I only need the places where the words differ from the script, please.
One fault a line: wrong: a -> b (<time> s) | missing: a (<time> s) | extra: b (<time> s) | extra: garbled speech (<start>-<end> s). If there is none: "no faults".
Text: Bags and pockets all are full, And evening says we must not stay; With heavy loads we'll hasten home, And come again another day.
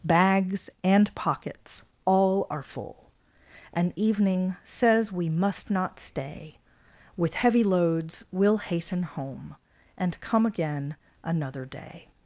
no faults